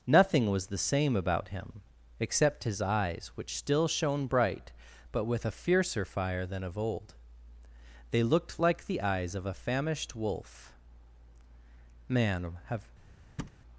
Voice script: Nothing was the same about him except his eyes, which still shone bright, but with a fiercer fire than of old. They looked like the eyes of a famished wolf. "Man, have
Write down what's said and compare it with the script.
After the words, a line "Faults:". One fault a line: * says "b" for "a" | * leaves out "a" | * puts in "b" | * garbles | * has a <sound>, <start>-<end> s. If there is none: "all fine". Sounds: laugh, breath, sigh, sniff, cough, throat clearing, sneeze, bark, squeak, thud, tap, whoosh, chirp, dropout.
Nothing was the same about him except his eyes, which still shone bright, but with a fiercer fire than of old. They looked like the eyes of a famished wolf. "Man, have
Faults:
* has a thud, 13.4-13.6 s